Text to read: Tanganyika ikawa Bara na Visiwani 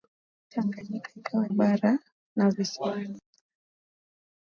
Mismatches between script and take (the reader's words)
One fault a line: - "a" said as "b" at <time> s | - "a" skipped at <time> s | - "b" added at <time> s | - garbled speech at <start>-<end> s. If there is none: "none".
none